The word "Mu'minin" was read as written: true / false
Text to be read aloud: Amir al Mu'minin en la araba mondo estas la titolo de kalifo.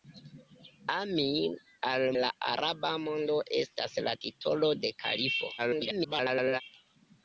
false